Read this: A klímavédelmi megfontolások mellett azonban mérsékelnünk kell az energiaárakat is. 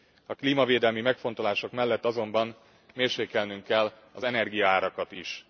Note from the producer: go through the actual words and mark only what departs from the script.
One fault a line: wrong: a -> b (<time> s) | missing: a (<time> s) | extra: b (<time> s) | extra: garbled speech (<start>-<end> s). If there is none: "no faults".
no faults